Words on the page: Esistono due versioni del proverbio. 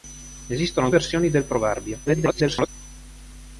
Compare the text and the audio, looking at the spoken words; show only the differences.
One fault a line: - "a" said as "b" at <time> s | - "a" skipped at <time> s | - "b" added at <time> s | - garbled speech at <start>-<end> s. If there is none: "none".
- "due" skipped at 0.9 s
- garbled speech at 2.0-2.7 s